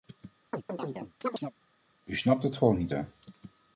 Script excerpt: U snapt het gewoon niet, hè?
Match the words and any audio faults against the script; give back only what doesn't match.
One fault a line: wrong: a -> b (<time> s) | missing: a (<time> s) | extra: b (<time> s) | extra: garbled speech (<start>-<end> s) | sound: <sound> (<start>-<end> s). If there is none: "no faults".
sound: chirp (0.5-1.5 s)